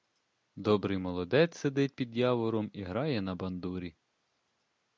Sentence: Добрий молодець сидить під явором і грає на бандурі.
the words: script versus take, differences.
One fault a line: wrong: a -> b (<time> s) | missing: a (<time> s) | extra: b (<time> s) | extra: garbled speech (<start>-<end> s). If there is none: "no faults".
no faults